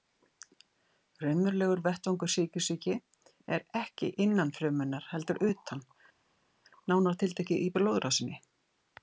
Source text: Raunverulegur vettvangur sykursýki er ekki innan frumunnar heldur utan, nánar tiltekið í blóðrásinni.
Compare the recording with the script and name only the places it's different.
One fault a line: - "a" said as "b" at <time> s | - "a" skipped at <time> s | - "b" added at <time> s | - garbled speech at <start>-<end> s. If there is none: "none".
none